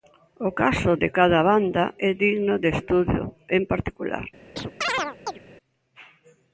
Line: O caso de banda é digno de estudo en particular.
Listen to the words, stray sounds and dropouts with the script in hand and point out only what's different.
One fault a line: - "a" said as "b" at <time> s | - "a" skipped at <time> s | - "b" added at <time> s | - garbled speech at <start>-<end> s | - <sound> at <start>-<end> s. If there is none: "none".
- "cada" added at 1.2 s
- chirp at 4.6-5.4 s